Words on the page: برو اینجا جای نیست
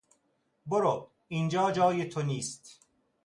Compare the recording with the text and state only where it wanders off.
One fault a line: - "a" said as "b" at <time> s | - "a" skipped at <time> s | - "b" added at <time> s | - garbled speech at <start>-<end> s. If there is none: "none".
- "تو" added at 2.1 s